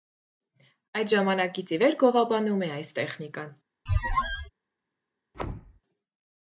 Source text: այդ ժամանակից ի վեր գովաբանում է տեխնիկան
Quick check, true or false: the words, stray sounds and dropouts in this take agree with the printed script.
false